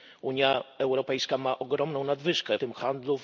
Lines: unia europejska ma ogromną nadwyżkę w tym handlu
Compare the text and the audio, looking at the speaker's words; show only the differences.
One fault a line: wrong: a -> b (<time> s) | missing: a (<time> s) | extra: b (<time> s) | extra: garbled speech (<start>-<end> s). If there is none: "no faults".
missing: w (2.6 s)